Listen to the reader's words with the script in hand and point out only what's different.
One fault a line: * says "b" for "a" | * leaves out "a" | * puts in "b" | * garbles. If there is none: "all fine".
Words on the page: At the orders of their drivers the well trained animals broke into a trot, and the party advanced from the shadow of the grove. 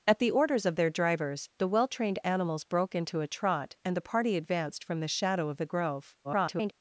* garbles